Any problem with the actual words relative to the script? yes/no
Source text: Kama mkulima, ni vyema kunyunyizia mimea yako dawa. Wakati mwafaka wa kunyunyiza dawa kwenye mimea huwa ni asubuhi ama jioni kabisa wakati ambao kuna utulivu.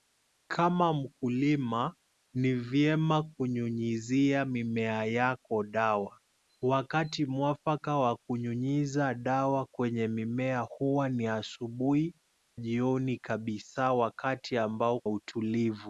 yes